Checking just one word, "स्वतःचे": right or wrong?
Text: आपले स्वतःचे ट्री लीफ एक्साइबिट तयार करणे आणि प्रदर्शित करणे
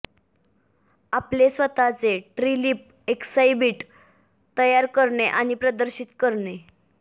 right